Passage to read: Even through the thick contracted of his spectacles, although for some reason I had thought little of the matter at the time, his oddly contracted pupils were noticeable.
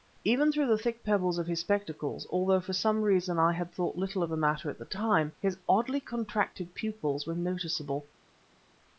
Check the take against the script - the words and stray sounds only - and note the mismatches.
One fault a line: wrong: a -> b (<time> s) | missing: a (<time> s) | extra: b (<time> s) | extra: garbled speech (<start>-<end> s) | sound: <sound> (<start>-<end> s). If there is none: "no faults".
wrong: contracted -> pebbles (1.0 s)